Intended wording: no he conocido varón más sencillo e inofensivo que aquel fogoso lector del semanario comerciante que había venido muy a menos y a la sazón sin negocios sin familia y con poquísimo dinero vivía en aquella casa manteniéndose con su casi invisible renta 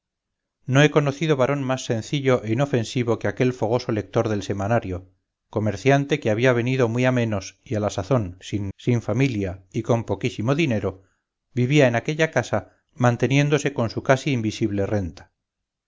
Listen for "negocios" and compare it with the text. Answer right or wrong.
wrong